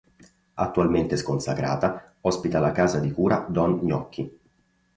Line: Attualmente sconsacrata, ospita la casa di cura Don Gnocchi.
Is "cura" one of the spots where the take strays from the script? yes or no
no